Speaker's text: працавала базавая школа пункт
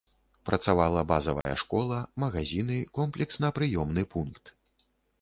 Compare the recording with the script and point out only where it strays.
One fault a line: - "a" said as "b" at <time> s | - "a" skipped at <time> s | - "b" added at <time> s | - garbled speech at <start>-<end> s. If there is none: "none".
- "магазіны комплексна прыёмны" added at 2.2 s